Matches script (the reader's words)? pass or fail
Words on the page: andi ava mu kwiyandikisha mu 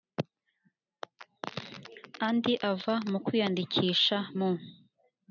pass